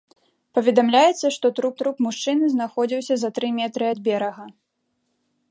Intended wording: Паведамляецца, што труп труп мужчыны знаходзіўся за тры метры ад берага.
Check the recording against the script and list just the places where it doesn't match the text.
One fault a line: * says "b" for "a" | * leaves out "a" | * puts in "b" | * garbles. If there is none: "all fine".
all fine